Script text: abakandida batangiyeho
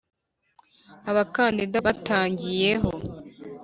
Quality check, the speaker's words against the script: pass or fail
pass